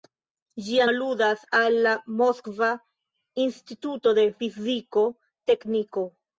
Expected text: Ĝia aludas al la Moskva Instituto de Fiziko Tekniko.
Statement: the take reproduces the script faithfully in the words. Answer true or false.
true